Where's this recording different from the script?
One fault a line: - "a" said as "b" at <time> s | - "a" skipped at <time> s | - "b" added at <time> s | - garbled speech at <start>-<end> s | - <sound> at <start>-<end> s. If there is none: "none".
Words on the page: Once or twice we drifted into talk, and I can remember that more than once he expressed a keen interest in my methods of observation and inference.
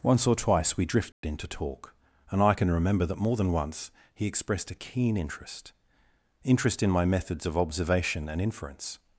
- dropout at 1.1-1.2 s
- "interest" added at 6.4 s